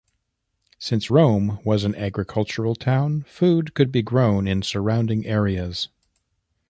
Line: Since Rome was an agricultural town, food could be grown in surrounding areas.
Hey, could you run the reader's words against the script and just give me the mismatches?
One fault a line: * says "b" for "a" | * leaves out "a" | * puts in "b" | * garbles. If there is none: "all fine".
all fine